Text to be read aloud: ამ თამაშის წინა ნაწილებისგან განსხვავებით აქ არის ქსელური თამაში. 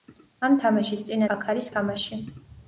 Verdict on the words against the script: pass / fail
fail